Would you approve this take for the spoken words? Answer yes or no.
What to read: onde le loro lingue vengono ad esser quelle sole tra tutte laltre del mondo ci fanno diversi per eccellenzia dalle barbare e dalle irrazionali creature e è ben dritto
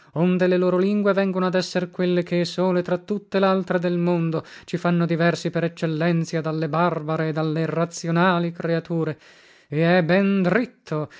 no